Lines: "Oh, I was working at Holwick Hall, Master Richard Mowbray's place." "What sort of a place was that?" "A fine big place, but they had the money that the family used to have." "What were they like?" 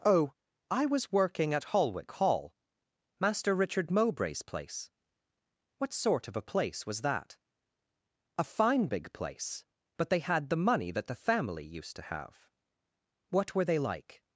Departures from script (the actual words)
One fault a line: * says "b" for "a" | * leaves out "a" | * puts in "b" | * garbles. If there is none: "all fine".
all fine